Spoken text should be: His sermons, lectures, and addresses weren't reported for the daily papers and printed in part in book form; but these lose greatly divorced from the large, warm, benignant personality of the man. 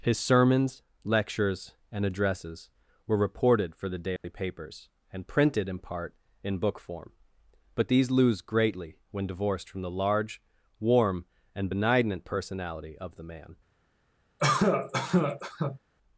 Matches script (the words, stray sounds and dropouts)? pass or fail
fail